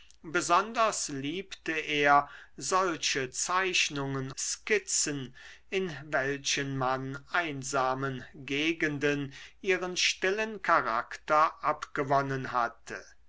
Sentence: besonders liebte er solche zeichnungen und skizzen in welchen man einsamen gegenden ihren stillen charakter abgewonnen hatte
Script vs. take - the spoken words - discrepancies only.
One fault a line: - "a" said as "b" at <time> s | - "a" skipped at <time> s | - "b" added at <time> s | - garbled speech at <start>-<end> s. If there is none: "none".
- "und" skipped at 4.3 s